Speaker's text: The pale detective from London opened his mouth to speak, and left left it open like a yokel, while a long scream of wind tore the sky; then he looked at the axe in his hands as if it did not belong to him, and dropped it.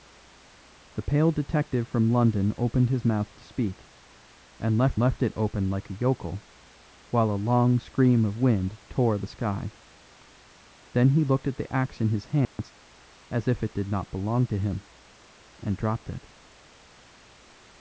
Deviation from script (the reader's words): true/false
false